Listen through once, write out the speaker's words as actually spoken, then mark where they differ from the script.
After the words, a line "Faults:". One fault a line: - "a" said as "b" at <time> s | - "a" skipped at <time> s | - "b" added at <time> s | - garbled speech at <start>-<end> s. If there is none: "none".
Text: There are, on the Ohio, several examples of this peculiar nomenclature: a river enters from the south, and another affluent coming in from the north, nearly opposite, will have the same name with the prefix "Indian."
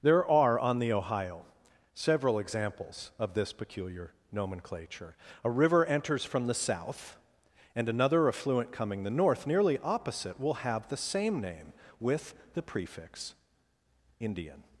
There are, on the Ohio, several examples of this peculiar nomenclature: a river enters from the south, and another affluent coming the north, nearly opposite, will have the same name with the prefix "Indian."
Faults:
- "in from" skipped at 9.0 s